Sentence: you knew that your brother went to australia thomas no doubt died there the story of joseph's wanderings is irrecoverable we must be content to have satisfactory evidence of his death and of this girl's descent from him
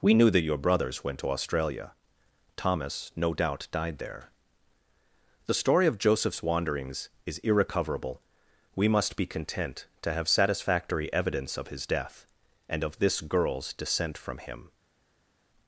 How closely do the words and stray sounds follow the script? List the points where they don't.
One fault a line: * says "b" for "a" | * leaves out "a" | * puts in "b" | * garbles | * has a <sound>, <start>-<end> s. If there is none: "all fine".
* says "we" for "you"
* says "brothers" for "brother"